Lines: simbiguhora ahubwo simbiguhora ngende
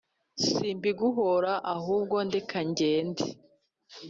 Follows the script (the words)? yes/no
no